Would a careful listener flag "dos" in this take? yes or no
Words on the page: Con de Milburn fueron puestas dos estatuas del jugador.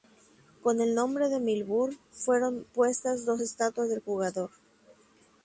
no